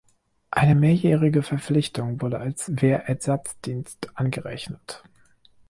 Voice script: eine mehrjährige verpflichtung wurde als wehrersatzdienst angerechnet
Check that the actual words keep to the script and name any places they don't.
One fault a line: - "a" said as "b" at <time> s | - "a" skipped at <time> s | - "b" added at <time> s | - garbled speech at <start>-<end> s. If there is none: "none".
none